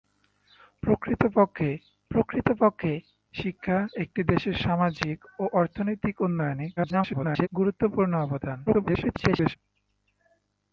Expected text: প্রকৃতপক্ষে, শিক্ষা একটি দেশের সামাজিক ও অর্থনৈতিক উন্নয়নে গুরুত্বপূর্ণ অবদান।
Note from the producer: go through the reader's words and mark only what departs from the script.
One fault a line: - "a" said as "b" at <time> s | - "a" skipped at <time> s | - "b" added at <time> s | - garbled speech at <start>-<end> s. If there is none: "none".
- "প্রকৃতপক্ষে" added at 2.1 s
- garbled speech at 6.8-7.5 s
- garbled speech at 8.7-9.6 s